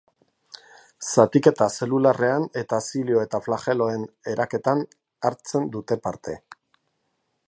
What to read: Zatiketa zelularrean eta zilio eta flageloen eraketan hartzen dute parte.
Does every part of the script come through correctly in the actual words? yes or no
yes